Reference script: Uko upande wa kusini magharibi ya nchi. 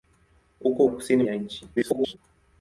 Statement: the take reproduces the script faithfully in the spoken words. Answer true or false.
false